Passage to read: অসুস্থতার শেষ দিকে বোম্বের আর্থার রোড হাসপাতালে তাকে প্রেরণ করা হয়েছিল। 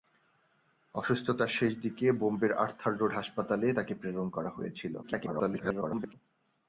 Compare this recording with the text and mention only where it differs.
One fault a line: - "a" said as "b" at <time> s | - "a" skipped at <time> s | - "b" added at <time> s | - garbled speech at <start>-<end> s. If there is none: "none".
- garbled speech at 5.0-6.1 s